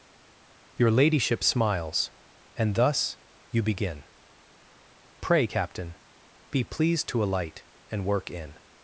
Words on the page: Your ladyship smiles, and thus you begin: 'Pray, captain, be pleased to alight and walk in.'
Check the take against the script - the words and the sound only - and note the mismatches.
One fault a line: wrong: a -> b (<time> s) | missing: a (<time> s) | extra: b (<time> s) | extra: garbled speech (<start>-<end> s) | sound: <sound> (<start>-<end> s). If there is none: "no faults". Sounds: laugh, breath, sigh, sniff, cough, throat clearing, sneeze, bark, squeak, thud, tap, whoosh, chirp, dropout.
wrong: walk -> work (8.0 s)